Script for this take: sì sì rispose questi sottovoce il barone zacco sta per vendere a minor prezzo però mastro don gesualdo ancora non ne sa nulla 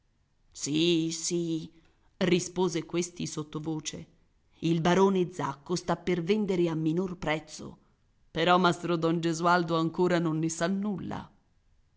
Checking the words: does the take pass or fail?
pass